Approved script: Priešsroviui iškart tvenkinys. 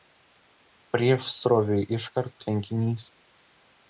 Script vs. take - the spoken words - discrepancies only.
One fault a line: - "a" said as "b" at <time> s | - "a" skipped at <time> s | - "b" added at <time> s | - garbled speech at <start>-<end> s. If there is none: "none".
none